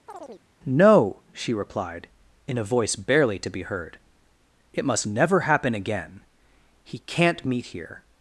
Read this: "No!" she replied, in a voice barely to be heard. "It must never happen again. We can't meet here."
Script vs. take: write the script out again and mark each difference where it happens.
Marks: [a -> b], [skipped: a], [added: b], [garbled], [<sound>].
[chirp] "No!" she replied, in a voice barely to be heard. "It must never happen again. [We -> He] can't meet here."